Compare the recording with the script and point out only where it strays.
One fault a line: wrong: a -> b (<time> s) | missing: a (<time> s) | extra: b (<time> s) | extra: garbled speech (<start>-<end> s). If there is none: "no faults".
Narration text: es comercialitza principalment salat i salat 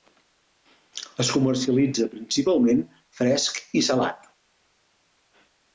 wrong: salat -> fresc (3.2 s)